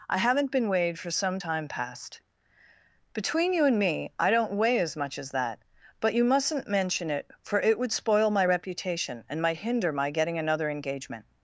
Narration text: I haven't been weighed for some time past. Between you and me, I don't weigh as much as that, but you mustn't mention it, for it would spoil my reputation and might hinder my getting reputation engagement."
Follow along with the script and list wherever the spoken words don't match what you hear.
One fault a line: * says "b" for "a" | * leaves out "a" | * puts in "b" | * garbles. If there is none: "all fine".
* says "another" for "reputation"